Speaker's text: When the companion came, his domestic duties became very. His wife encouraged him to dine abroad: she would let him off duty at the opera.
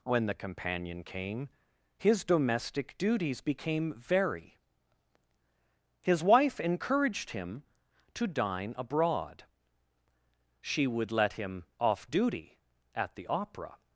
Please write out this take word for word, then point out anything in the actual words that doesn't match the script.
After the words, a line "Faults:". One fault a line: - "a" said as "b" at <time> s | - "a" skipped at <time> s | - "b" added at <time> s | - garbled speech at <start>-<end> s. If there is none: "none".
When the companion came, his domestic duties became very. His wife encouraged him to dine abroad: she would let him off duty at the opera.
Faults:
none